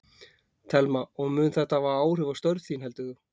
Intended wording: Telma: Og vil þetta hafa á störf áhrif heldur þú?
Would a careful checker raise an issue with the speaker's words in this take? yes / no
yes